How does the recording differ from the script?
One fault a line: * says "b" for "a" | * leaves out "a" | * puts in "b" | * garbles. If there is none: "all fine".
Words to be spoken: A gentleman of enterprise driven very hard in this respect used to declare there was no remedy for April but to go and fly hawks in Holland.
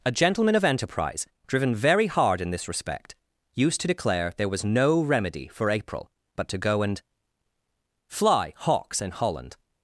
all fine